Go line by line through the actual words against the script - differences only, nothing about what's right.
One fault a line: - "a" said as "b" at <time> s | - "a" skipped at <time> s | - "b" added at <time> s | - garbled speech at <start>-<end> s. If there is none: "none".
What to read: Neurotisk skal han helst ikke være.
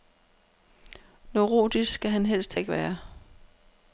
none